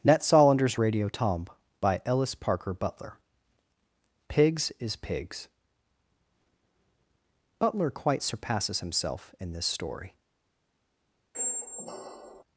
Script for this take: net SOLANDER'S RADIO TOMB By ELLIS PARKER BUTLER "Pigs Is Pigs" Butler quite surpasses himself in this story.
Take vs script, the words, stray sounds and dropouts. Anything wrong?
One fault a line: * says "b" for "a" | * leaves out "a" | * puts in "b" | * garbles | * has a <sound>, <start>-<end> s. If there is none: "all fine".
* has a squeak, 11.3-12.4 s